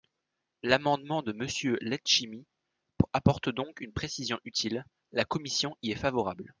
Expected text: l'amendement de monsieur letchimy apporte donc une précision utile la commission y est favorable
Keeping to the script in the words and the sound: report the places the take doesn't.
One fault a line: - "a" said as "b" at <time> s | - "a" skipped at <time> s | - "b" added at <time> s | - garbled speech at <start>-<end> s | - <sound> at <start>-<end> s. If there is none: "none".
none